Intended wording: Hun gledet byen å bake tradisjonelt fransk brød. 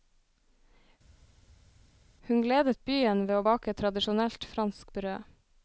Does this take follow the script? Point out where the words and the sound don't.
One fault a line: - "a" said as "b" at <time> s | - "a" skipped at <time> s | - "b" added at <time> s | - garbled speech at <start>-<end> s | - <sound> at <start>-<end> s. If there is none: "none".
- "ved" added at 3.3 s